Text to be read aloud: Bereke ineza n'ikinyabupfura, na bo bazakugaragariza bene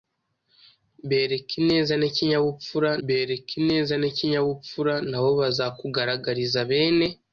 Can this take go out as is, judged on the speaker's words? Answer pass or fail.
fail